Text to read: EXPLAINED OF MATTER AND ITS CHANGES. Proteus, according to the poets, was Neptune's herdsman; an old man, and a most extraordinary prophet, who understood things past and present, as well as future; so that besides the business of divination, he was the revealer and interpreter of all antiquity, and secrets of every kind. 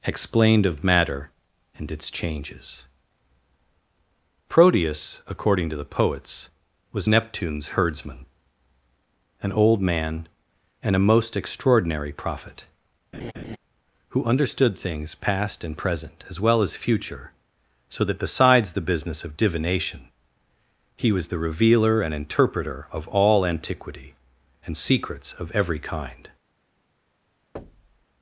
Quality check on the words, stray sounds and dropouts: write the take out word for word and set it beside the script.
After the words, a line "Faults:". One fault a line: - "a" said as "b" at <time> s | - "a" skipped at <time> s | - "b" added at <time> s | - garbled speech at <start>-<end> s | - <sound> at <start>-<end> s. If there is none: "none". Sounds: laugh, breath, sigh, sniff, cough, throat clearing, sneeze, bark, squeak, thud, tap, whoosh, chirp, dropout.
EXPLAINED OF MATTER AND ITS CHANGES. Proteus, according to the poets, was Neptune's herdsman; an old man, and a most extraordinary prophet, who understood things past and present, as well as future; so that besides the business of divination, he was the revealer and interpreter of all antiquity, and secrets of every kind.
Faults:
- laugh at 13.1-13.6 s
- thud at 27.6-28.1 s